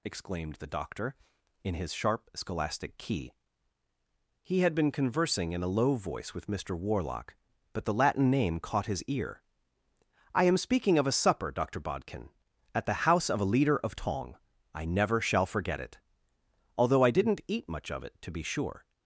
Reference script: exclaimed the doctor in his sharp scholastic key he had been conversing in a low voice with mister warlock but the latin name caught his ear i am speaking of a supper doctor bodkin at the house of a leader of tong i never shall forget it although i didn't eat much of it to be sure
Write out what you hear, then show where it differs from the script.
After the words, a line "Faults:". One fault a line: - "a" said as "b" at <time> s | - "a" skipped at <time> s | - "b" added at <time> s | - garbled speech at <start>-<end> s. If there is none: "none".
exclaimed the doctor in his sharp scholastic key he had been conversing in a low voice with mister warlock but the latin name caught his ear i am speaking of a supper doctor bodkin at the house of a leader of tong i never shall forget it although i didn't eat much of it to be sure
Faults:
none